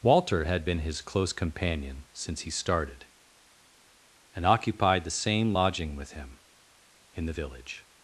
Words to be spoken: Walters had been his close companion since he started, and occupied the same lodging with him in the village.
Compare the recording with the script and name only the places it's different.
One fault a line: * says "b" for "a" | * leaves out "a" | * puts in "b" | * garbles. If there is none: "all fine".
* says "Walter" for "Walters"